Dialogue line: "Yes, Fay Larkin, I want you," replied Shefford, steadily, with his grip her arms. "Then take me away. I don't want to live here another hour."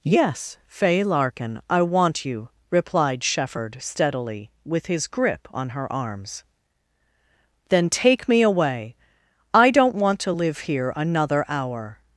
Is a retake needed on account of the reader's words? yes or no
yes